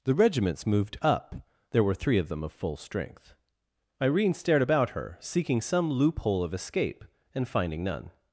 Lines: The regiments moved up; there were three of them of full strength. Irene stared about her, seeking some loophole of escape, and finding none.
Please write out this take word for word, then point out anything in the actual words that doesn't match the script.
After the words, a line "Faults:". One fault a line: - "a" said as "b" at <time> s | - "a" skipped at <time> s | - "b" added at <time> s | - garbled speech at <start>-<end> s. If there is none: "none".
The regiments moved up; there were three of them of full strength. Irene stared about her, seeking some loophole of escape, and finding none.
Faults:
none